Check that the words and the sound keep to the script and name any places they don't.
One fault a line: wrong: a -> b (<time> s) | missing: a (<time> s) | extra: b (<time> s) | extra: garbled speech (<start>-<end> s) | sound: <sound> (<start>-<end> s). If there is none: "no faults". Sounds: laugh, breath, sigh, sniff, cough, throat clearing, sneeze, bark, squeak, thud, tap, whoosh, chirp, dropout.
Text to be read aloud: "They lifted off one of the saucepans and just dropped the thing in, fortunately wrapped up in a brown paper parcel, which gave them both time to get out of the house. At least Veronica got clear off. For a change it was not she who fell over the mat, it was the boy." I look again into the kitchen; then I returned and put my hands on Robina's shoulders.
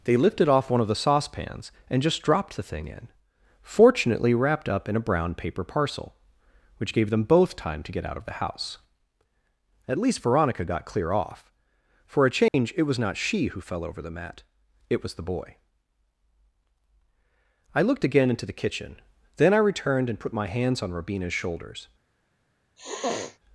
sound: dropout (12.5-12.5 s)
wrong: look -> looked (17.8 s)
sound: sniff (22.8-23.4 s)